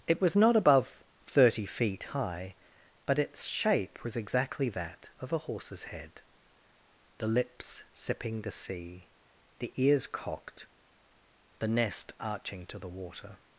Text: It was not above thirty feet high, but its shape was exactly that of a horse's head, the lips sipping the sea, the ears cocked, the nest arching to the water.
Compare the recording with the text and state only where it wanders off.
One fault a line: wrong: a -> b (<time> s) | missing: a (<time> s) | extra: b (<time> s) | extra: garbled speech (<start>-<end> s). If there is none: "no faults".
no faults